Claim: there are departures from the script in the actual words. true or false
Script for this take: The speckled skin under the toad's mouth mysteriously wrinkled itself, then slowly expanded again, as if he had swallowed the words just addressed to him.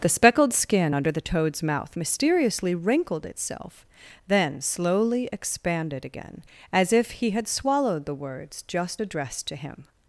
false